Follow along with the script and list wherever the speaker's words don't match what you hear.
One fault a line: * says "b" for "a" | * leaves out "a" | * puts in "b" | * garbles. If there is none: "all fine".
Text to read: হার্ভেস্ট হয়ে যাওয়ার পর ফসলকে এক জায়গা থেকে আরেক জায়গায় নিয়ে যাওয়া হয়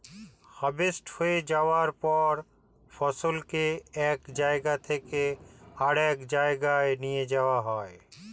all fine